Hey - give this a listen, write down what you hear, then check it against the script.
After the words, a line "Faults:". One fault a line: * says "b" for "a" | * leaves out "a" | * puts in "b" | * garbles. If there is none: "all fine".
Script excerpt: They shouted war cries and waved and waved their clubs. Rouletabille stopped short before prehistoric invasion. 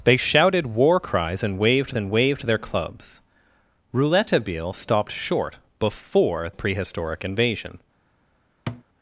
They shouted war cries and waved and waved their clubs. Rouletabille stopped short before prehistoric invasion.
Faults:
all fine